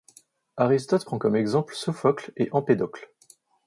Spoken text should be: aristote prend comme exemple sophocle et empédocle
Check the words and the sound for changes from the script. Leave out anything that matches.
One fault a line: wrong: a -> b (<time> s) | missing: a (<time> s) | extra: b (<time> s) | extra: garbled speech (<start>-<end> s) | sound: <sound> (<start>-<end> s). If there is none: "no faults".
no faults